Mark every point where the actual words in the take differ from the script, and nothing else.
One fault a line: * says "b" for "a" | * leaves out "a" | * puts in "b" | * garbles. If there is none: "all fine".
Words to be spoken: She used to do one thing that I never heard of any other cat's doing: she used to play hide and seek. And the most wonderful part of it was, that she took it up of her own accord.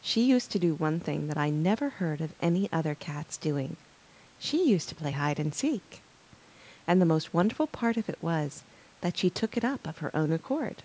all fine